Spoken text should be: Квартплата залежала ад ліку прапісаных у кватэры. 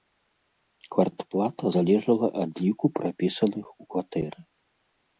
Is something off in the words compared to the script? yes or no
no